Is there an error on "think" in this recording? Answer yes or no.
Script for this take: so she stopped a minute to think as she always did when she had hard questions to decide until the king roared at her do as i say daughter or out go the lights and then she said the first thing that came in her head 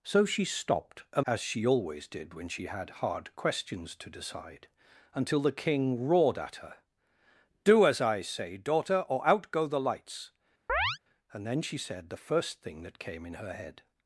yes